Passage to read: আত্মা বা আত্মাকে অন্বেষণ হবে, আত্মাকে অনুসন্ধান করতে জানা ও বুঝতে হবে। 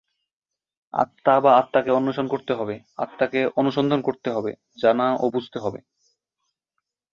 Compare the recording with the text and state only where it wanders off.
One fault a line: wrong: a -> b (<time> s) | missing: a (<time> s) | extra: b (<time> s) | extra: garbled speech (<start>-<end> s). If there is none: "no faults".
extra: করতে (2.3 s)
extra: হবে (4.3 s)